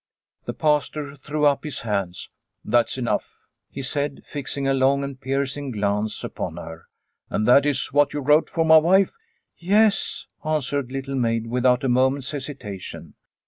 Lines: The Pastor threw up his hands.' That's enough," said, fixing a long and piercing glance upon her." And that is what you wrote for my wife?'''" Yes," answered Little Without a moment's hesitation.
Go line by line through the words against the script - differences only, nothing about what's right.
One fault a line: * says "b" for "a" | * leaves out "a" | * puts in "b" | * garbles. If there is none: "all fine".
* puts in "he"
* puts in "Maid"